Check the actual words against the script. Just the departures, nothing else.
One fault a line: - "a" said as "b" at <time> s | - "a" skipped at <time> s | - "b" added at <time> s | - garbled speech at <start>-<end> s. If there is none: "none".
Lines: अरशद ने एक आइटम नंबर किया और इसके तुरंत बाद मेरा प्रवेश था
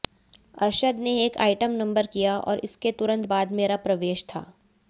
none